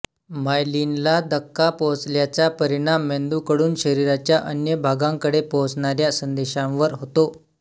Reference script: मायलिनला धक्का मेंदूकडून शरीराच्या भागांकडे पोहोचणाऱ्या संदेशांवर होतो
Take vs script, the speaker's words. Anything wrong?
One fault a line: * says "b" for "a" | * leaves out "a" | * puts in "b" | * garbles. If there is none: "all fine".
* puts in "पोहोचल्याचा परिणाम"
* puts in "अन्य"